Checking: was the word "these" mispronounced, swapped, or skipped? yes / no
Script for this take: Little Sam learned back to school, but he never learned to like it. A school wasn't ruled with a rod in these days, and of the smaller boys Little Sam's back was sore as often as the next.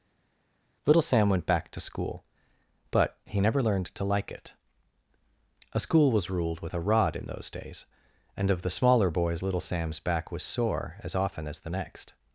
yes